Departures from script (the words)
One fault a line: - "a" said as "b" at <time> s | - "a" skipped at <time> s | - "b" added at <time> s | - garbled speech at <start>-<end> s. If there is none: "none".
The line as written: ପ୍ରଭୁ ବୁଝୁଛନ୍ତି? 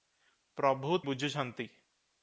none